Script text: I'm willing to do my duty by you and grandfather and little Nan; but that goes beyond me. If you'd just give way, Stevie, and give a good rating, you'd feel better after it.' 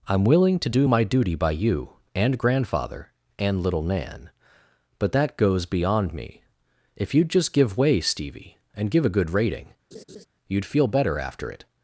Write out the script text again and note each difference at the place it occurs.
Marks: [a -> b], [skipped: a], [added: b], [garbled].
I'm willing to do my duty by you and grandfather and little Nan; but that goes beyond me. If you'd just give way, Stevie, and give a good rating, you'd feel better after it.'